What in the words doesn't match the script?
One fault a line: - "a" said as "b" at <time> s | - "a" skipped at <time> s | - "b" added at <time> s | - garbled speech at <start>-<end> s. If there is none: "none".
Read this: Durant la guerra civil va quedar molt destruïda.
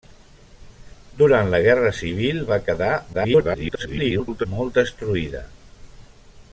- garbled speech at 3.1-4.5 s